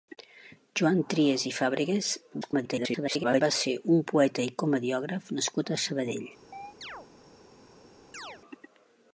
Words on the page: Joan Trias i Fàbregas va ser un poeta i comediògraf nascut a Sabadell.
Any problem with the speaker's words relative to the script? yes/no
yes